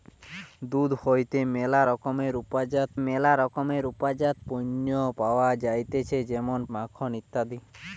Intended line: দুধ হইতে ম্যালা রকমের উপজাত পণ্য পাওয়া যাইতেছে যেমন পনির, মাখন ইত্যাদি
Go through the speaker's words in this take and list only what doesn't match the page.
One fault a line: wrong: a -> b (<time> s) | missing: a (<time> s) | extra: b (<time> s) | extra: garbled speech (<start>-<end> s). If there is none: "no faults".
extra: ম্যালা রকমের উপজাত (3.1 s)
missing: পনির (6.6 s)